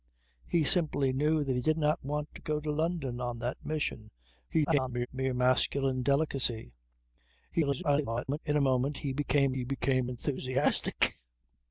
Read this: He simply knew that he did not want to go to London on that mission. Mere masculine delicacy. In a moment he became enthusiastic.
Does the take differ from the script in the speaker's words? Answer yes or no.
yes